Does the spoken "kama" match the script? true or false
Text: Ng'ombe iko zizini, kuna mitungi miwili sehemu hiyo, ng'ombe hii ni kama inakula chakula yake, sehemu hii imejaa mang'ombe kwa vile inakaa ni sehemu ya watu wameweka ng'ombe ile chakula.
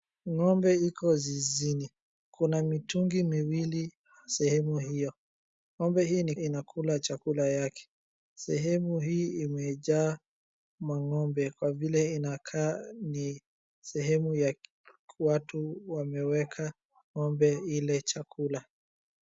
false